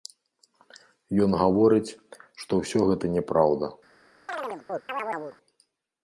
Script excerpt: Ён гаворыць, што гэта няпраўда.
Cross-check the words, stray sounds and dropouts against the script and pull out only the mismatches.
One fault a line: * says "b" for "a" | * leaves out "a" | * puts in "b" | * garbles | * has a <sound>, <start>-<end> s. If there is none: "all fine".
* puts in "ўсё"
* has a chirp, 4.3-5.4 s